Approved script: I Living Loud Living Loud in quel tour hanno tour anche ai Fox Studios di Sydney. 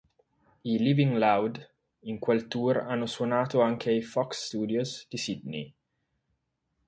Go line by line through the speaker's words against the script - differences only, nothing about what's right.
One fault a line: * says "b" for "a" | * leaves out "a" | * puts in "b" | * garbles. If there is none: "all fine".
* leaves out "Living Loud"
* says "suonato" for "tour"